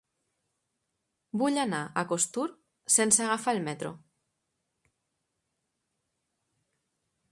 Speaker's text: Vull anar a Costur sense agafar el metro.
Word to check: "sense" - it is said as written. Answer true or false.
true